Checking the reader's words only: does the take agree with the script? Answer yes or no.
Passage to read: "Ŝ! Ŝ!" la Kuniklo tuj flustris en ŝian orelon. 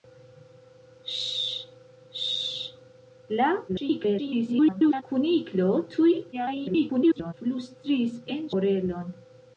no